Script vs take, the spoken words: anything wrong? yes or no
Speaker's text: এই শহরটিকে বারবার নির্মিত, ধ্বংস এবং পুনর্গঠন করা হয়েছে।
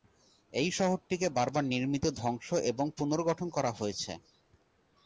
no